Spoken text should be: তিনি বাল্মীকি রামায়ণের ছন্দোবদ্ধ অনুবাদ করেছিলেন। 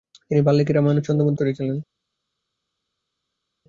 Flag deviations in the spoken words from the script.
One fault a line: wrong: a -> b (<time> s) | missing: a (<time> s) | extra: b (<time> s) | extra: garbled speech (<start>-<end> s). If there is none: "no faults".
missing: অনুবাদ (1.4 s)